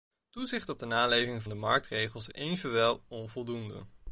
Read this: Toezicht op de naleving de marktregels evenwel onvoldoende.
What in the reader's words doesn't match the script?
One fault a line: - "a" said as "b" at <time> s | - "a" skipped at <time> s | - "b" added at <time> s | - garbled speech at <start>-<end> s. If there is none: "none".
none